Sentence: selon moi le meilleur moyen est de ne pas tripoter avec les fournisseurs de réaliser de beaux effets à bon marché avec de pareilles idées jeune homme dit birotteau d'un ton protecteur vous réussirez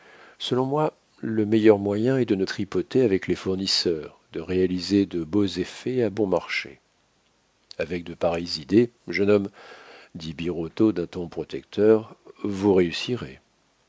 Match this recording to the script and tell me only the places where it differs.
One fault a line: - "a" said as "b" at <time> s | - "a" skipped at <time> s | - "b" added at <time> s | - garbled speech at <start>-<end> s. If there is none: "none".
- "pas" skipped at 2.5 s